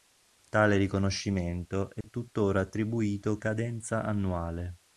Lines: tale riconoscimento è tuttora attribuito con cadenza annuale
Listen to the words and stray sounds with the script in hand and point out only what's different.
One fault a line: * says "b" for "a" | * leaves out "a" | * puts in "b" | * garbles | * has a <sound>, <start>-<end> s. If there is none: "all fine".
* has a dropout, 2.0-2.0 s
* leaves out "con"